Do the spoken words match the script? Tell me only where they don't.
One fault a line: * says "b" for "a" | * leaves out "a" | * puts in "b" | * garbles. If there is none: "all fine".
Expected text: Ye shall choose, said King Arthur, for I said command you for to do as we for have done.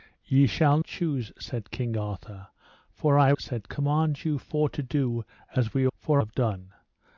all fine